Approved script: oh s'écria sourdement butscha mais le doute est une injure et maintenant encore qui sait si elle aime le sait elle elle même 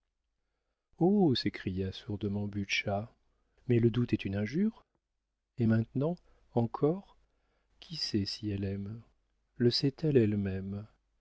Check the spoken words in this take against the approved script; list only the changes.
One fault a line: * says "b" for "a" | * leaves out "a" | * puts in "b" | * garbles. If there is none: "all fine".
all fine